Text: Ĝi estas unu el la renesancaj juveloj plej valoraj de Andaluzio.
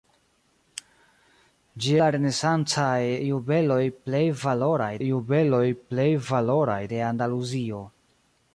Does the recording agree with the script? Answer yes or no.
no